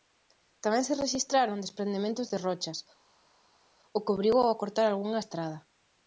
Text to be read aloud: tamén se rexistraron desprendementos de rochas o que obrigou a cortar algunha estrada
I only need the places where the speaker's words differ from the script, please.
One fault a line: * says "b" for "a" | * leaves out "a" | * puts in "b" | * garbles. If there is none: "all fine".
all fine